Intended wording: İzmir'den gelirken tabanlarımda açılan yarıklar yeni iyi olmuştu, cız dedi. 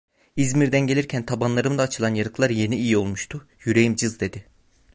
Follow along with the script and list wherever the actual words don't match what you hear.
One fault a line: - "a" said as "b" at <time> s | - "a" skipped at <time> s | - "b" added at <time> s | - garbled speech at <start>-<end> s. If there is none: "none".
- "yüreğim" added at 3.6 s